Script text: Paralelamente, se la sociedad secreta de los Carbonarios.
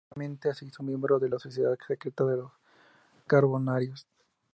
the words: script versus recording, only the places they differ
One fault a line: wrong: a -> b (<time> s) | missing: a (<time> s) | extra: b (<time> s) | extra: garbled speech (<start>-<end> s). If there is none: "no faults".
extra: hizo miembro de (0.7 s)